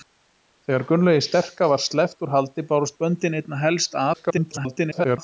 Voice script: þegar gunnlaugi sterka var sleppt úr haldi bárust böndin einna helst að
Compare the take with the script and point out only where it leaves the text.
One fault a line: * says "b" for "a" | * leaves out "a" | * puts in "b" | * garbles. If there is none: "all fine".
* garbles